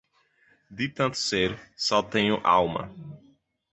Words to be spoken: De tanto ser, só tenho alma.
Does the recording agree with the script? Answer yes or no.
yes